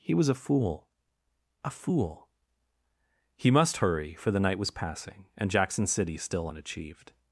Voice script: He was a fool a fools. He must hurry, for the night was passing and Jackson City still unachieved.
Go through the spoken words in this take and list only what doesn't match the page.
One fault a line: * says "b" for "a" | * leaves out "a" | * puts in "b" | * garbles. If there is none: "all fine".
* says "fool" for "fools"